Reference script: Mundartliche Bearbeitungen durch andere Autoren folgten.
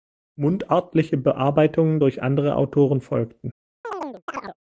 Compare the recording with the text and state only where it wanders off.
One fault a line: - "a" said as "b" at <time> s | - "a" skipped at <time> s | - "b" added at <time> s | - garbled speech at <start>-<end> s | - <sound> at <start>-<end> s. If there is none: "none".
- chirp at 3.8-4.6 s